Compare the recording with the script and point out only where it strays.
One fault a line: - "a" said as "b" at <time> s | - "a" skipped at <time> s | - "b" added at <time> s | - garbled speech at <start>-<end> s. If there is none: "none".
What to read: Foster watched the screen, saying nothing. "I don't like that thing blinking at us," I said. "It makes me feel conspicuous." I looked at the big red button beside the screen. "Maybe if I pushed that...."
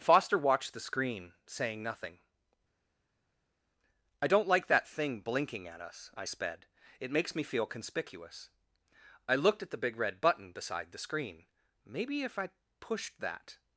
- "said" said as "sped" at 6.2 s